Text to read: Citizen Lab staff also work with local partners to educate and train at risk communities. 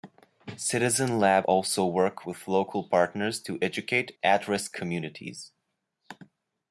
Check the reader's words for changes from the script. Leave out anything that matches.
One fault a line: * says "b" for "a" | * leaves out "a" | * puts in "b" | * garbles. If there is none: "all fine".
* leaves out "staff"
* leaves out "and train"